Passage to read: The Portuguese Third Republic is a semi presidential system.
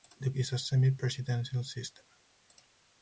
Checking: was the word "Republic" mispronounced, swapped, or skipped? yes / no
yes